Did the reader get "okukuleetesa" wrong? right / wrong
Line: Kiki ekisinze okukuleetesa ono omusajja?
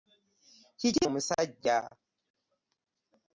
wrong